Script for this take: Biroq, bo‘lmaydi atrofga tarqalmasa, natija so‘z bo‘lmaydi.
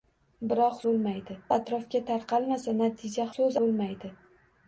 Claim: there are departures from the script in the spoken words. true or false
false